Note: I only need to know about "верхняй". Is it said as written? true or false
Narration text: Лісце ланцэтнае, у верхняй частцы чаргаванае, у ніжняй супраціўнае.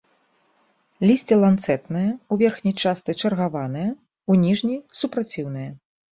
true